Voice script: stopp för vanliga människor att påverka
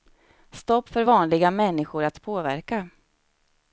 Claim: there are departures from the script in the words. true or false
false